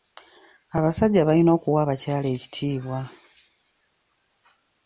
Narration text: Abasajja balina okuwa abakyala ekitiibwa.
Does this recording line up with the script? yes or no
yes